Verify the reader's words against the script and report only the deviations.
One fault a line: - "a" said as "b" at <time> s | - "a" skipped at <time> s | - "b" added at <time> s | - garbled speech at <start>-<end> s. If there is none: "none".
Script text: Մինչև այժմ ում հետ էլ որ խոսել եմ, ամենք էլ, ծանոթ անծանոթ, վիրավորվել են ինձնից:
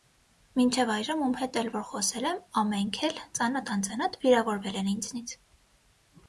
none